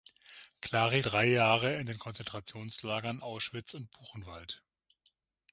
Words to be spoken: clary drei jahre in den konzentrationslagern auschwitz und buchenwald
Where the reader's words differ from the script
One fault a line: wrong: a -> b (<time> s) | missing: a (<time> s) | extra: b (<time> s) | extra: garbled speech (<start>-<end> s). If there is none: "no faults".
no faults